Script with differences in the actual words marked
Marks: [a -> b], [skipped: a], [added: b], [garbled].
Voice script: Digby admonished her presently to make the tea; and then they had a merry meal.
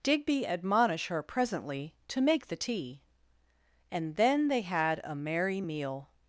Digby [admonished -> admonish] her presently to make the tea; and then they had a merry meal.